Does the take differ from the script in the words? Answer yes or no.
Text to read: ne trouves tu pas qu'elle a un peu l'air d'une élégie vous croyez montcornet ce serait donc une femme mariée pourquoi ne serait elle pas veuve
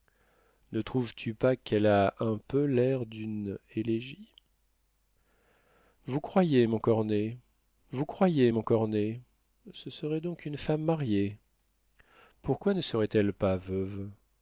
yes